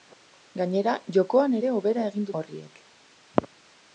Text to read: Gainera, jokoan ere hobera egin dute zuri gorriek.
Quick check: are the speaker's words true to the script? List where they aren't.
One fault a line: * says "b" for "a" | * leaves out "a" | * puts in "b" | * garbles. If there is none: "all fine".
* leaves out "dute zuri"